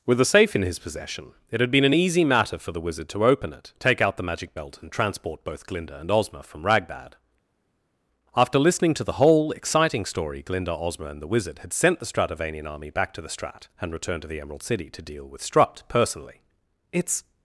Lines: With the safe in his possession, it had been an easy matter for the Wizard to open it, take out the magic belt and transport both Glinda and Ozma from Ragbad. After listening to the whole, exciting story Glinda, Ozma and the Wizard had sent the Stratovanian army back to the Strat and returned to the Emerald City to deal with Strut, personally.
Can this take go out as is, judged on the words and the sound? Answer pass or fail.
fail